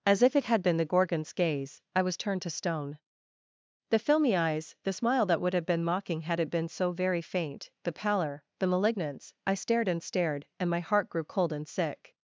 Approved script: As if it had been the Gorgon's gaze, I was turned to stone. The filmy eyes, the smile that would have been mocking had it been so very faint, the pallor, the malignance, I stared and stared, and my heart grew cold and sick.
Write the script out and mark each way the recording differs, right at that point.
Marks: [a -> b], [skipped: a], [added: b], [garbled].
As if it had been the Gorgon's gaze, I was turned to stone. The filmy eyes, the smile that would have been mocking had it been so very faint, the pallor, the malignance, I stared and stared, and my heart grew cold and sick.